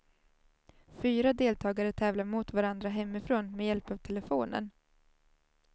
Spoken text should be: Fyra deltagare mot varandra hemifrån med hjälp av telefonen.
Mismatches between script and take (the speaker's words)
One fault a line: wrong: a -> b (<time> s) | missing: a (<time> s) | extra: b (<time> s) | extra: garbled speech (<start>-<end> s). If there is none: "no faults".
extra: tävlar (1.9 s)